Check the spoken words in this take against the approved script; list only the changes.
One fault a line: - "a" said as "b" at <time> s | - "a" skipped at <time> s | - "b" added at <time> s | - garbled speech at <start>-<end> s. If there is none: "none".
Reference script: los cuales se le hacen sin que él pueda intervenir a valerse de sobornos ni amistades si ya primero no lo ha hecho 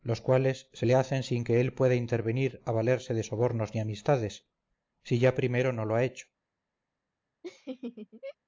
none